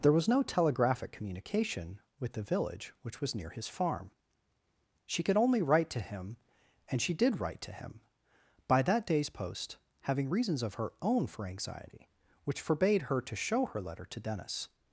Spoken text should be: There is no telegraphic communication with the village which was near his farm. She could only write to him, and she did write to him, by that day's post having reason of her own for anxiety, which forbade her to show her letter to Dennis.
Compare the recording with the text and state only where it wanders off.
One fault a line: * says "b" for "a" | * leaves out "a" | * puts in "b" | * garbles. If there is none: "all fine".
* says "was" for "is"
* says "reasons" for "reason"